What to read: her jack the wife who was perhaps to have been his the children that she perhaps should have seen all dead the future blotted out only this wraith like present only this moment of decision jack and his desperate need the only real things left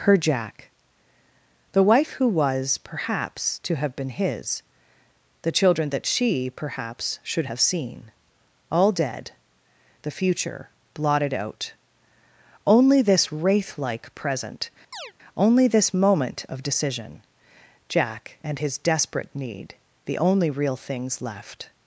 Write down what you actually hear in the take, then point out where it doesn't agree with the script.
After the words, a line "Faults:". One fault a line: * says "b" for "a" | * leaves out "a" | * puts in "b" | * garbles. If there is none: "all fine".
her jack the wife who was perhaps to have been his the children that she perhaps should have seen all dead the future blotted out only this wraith like present only this moment of decision jack and his desperate need the only real things left
Faults:
all fine